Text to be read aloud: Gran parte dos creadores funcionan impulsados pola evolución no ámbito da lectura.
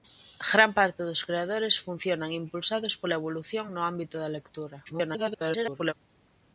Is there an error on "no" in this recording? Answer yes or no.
no